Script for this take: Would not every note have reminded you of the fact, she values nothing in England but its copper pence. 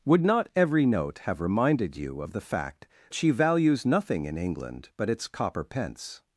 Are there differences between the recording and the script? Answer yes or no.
no